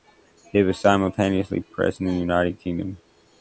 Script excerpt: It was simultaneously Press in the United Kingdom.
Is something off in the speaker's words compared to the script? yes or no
no